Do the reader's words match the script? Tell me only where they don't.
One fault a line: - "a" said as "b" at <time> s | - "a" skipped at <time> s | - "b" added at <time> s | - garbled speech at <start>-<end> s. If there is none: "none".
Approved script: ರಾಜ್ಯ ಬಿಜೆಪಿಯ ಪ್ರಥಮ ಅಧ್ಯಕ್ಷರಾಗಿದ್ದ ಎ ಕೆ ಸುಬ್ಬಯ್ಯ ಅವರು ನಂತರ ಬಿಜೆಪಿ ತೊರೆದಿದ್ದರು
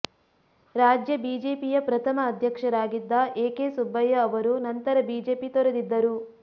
none